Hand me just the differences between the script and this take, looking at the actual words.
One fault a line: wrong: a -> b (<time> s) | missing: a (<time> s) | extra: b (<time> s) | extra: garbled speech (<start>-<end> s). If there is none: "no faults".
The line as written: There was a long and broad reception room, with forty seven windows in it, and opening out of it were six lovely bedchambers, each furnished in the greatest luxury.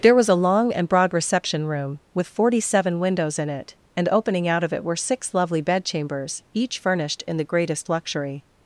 no faults